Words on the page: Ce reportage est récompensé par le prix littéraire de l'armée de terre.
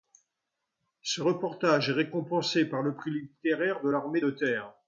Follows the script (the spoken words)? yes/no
yes